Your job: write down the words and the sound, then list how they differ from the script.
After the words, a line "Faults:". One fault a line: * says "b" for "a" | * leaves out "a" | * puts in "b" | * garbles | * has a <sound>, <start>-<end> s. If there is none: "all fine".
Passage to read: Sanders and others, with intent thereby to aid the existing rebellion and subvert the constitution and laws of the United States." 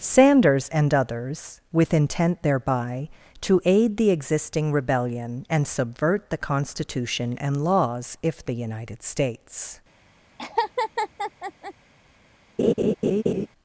Sanders and others, with intent thereby to aid the existing rebellion and subvert the constitution and laws if the United States."
Faults:
* says "if" for "of"
* has a laugh, 10.4-11.7 s
* has a laugh, 12.6-13.5 s